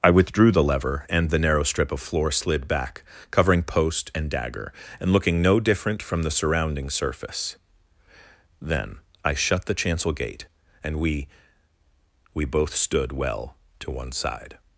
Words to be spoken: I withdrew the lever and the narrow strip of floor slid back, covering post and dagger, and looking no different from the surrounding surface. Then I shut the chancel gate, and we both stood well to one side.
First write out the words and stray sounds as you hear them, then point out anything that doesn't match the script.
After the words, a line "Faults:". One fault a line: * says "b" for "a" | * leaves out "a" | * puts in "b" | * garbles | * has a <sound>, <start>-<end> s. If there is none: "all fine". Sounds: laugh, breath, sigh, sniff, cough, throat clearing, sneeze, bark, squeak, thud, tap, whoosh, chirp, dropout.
I withdrew the lever and the narrow strip of floor slid back, covering post and dagger, and looking no different from the surrounding surface. Then I shut the chancel gate, and we we both stood well to one side.
Faults:
* puts in "we"